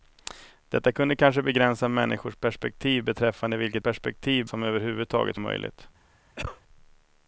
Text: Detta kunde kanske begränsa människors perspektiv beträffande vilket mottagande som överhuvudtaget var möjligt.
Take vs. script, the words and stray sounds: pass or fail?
fail